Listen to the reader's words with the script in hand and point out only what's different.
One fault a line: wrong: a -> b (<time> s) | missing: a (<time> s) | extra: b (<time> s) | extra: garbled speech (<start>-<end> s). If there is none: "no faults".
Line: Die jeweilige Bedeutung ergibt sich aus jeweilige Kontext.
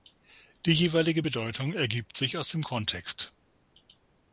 wrong: jeweilige -> dem (2.5 s)